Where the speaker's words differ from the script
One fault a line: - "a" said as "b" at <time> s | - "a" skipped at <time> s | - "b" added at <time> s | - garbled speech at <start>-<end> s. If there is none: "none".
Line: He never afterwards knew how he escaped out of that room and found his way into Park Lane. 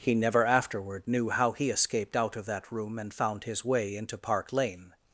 - "afterwards" said as "afterward" at 0.5 s